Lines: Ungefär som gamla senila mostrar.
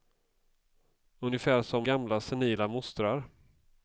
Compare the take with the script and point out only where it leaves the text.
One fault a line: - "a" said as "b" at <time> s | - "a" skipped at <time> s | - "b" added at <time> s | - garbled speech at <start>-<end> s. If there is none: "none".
none